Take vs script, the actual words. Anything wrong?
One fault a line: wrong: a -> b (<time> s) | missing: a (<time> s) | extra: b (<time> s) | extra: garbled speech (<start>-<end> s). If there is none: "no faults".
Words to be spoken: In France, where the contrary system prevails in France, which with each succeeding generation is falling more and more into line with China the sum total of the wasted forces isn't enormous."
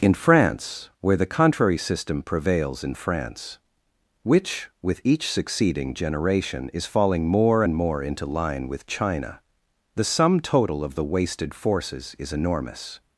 wrong: isn't -> is (12.2 s)